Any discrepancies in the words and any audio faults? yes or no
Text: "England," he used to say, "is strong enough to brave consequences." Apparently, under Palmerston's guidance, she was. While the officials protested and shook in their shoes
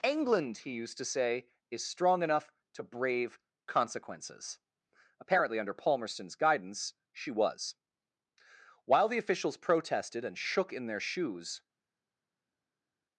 no